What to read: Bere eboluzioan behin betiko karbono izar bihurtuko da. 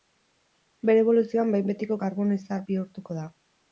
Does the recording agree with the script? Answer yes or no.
yes